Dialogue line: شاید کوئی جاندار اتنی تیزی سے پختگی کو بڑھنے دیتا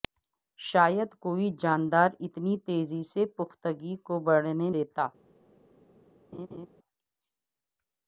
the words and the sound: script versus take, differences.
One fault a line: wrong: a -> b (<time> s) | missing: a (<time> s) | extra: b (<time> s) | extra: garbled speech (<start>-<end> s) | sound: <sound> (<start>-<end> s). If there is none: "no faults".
sound: laugh (6.3-6.7 s)